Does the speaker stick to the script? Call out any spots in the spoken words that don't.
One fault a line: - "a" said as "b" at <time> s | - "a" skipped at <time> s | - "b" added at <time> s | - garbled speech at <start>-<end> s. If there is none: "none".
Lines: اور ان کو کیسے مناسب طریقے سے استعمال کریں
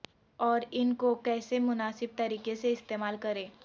none